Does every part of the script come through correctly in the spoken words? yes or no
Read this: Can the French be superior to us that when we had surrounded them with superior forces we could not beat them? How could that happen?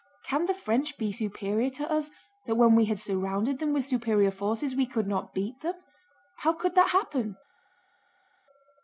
yes